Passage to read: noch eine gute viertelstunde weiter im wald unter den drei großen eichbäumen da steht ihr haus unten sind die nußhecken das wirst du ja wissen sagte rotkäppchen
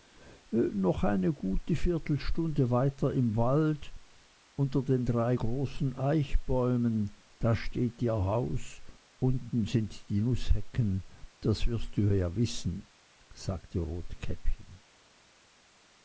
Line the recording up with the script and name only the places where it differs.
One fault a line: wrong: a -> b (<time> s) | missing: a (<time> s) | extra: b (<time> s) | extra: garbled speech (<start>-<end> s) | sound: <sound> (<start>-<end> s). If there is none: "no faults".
no faults